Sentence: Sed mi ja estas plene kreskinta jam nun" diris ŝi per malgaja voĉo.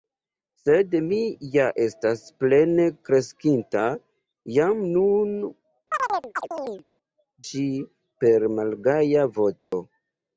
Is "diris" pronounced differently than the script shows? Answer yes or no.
yes